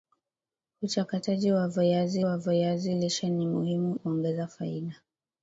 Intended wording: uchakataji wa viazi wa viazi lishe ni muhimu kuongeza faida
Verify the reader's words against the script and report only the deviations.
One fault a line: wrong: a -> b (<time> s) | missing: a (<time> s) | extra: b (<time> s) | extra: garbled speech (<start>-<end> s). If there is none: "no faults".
no faults